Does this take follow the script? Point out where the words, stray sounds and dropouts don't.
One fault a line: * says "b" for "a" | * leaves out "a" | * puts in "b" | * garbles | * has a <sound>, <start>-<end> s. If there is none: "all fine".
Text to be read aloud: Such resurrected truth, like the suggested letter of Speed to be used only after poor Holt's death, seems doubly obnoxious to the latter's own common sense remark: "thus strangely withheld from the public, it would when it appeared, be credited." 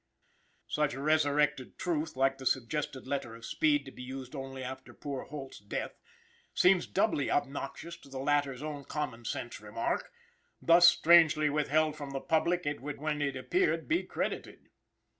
all fine